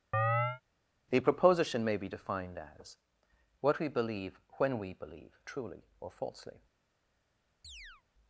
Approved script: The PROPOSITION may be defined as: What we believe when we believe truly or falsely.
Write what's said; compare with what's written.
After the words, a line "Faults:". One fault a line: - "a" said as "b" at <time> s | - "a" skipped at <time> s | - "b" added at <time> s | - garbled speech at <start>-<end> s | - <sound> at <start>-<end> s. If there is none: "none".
The PROPOSITION may be defined as: What we believe when we believe truly or falsely.
Faults:
- chirp at 0.1-0.6 s
- chirp at 7.6-8.0 s